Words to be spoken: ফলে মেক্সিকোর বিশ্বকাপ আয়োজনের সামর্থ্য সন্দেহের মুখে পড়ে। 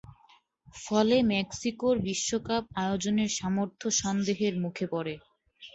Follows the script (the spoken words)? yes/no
yes